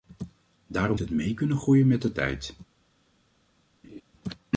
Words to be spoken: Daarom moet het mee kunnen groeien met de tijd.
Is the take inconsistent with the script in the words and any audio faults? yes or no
yes